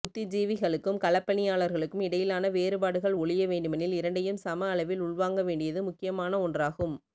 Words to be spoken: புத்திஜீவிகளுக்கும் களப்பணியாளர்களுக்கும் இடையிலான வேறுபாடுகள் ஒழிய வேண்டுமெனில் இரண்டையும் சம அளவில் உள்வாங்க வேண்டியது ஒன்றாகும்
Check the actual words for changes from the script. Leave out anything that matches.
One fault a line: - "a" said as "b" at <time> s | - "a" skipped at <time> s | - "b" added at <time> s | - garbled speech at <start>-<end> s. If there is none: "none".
- "முக்கியமான" added at 5.8 s